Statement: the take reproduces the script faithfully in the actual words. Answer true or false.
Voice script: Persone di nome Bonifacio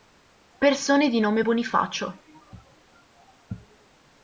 true